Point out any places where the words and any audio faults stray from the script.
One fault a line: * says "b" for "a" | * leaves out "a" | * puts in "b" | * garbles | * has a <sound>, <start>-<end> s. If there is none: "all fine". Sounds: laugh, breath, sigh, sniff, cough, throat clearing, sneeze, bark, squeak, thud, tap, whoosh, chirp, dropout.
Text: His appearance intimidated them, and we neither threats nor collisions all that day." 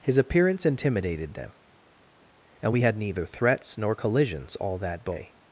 * puts in "had"